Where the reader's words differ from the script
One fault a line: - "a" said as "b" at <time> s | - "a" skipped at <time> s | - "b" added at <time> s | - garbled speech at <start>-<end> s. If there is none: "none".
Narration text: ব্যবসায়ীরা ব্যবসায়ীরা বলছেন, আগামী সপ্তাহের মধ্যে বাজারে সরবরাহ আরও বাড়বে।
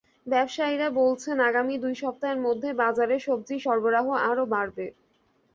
- "ব্যবসায়ীরা" skipped at 0.9 s
- "দুই" added at 1.8 s
- "সবজির" added at 3.2 s